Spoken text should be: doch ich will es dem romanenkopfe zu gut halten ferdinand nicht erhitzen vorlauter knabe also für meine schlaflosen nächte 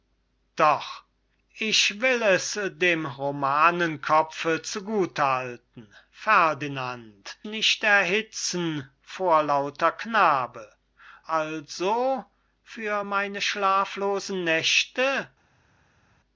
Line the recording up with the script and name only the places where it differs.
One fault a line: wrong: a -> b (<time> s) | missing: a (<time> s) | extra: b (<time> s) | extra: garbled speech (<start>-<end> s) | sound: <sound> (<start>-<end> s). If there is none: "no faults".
no faults